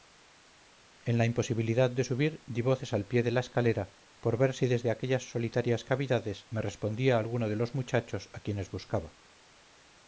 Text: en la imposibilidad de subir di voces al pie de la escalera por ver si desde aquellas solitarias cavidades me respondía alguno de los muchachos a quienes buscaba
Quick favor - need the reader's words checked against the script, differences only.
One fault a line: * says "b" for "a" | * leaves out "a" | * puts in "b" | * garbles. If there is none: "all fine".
all fine